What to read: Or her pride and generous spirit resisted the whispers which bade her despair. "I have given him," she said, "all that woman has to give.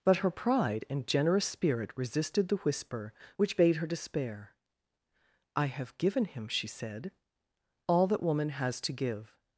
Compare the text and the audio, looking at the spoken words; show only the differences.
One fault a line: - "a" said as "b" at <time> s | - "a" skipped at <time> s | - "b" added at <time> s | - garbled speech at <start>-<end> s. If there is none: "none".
- "Or" said as "But" at 0.0 s
- "whispers" said as "whisper" at 2.6 s